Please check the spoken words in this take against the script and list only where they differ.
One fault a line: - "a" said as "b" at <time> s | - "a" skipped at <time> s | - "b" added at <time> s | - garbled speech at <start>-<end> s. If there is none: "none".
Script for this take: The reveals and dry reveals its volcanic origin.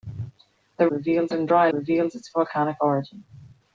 none